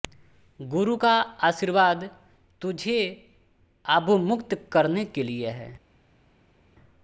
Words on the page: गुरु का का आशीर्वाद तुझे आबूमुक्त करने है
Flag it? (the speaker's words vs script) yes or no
yes